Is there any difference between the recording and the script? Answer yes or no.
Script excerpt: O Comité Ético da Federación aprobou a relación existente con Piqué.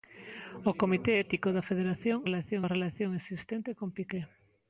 yes